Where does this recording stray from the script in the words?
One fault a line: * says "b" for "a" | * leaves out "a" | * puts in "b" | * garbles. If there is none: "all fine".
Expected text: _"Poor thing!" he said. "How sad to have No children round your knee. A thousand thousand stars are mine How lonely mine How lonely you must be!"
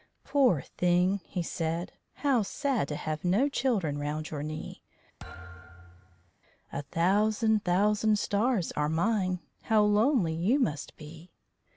* leaves out "mine How lonely"